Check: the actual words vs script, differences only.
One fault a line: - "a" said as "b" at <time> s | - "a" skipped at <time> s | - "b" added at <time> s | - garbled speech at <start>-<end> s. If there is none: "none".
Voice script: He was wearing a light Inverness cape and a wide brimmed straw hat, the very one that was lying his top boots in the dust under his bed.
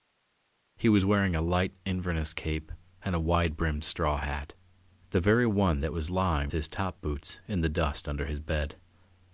none